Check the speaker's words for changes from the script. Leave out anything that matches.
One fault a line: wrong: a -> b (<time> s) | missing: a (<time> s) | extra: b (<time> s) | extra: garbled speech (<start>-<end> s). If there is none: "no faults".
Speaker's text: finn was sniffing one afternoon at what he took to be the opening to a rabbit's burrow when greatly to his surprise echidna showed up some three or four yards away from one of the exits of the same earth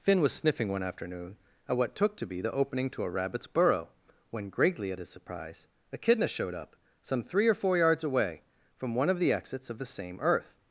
missing: he (1.9 s)
wrong: to -> at (4.9 s)